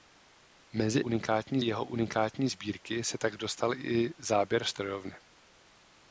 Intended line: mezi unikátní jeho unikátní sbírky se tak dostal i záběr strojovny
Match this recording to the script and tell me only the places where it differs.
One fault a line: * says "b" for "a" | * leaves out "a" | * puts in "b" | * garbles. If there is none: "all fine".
all fine